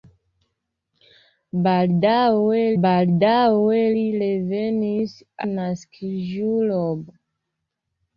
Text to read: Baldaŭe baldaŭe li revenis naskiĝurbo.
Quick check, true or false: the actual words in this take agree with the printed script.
true